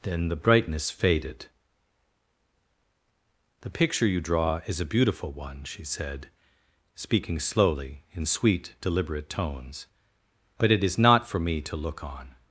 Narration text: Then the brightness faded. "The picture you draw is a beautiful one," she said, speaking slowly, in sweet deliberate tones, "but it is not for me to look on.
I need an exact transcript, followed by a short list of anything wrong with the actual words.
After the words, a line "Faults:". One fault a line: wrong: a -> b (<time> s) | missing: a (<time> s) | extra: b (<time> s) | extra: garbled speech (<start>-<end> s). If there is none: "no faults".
Then the brightness faded. "The picture you draw is a beautiful one," she said, speaking slowly, in sweet deliberate tones, "but it is not for me to look on.
Faults:
no faults